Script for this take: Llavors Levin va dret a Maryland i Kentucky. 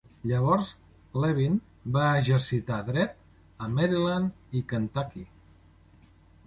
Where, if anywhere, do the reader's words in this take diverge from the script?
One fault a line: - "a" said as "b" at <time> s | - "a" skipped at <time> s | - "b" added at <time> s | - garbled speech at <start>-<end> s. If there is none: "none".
- "exercitar" added at 2.2 s